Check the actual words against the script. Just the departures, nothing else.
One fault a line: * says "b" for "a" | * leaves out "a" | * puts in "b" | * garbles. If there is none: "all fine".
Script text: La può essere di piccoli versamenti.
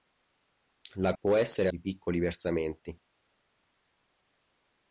all fine